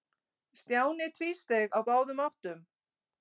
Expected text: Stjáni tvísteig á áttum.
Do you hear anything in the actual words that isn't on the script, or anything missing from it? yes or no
yes